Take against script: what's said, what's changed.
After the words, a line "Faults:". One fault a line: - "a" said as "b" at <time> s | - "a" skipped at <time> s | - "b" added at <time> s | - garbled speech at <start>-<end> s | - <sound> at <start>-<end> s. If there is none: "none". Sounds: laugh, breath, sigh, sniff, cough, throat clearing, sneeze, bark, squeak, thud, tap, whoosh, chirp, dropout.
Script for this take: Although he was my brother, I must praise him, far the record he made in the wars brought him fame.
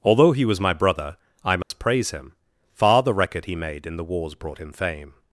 Although he was my brother, I must praise him, far the record he made in the wars brought him fame.
Faults:
- dropout at 1.6-1.7 s